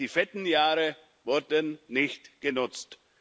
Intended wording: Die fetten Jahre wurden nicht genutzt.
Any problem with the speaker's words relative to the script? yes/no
no